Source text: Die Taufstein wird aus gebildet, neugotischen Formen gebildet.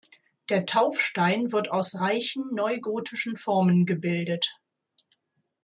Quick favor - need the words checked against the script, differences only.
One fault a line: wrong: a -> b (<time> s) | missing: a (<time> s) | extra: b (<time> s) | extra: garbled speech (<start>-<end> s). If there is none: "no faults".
wrong: Die -> Der (0.5 s)
wrong: gebildet -> reichen (2.0 s)